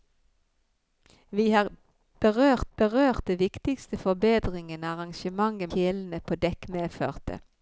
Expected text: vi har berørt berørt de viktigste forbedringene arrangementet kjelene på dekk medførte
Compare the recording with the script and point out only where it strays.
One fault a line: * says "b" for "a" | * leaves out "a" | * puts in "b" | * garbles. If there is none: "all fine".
all fine